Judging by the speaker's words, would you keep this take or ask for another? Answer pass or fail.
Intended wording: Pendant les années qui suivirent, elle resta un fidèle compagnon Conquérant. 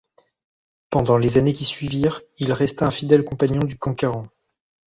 fail